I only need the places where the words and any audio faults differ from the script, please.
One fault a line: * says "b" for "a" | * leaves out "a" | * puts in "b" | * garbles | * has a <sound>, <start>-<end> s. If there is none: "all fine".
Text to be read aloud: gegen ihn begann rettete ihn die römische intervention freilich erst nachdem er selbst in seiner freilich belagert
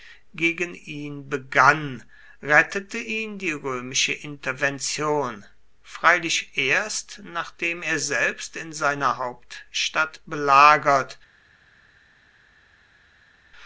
* says "hauptstadt" for "freilich"